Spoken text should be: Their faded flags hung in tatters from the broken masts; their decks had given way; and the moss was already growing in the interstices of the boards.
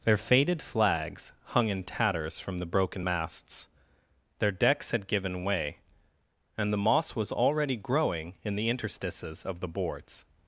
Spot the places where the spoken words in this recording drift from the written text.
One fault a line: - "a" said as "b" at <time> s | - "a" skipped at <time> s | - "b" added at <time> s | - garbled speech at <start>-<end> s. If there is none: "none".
none